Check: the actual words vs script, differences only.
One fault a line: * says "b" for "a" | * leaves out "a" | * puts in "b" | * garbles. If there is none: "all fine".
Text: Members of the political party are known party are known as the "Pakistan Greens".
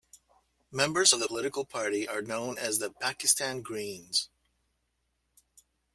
* leaves out "party are known"